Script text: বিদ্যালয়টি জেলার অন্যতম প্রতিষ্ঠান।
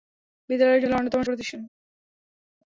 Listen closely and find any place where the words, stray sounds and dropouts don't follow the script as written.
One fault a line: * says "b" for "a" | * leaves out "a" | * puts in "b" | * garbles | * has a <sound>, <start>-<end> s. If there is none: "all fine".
all fine